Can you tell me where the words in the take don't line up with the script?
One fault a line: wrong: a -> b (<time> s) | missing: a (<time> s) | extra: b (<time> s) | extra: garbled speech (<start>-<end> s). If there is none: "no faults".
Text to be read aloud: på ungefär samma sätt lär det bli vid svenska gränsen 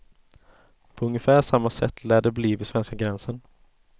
no faults